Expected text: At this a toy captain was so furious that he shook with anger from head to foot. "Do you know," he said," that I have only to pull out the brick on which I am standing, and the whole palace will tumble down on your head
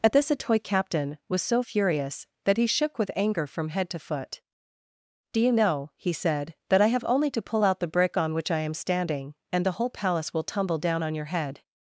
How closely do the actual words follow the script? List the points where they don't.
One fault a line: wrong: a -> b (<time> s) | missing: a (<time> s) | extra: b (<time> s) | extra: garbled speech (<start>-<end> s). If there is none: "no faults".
no faults